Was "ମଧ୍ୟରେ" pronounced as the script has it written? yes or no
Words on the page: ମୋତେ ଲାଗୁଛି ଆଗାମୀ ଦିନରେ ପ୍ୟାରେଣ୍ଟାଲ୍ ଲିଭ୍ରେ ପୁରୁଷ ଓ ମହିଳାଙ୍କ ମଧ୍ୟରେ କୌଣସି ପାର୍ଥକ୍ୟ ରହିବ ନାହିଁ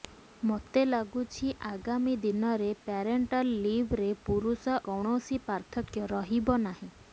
no